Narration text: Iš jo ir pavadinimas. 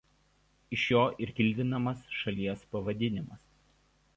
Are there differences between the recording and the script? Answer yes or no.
yes